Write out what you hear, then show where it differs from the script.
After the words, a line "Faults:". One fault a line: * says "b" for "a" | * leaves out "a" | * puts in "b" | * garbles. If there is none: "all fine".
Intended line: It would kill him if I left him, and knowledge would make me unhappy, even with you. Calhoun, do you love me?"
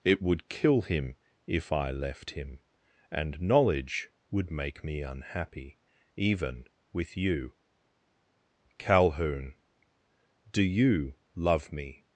It would kill him if I left him, and knowledge would make me unhappy, even with you. Calhoun, do you love me?"
Faults:
all fine